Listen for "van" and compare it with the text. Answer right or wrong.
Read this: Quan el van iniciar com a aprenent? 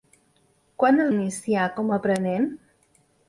wrong